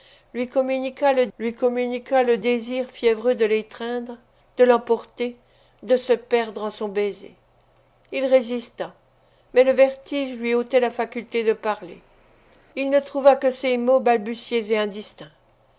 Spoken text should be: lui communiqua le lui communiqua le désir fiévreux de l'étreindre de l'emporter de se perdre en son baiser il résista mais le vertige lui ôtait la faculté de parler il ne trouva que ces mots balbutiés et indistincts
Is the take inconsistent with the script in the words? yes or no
no